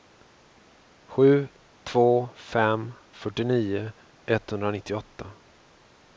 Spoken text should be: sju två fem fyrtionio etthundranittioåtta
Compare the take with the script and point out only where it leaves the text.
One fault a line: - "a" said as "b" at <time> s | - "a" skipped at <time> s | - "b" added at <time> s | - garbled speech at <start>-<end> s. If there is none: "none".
none